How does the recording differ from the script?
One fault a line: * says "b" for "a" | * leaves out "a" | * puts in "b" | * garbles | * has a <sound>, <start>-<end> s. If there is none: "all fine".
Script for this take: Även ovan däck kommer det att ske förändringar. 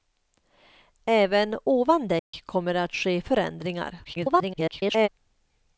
* has a dropout, 2.2-2.3 s
* garbles